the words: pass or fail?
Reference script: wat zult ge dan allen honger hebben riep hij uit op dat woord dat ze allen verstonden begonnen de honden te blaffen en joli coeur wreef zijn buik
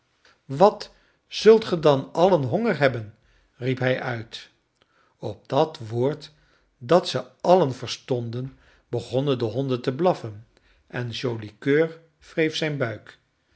pass